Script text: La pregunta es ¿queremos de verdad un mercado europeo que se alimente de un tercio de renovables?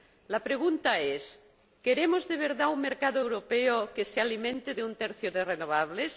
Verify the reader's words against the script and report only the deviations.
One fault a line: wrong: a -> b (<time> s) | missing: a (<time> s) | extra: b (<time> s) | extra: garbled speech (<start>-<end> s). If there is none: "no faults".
no faults